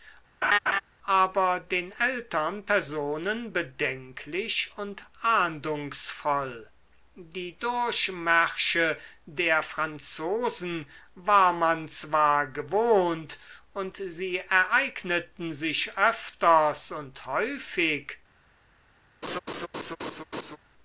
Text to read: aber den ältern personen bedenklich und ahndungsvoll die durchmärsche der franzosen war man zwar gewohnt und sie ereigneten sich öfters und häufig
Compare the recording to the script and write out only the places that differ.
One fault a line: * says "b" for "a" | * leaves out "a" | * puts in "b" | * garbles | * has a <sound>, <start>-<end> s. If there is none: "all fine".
* has a laugh, 0.4-0.8 s
* has a laugh, 19.2-20.6 s